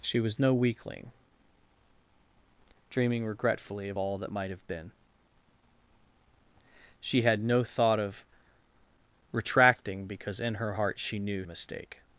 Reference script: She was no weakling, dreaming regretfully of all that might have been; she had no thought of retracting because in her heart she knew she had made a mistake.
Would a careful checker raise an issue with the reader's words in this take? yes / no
yes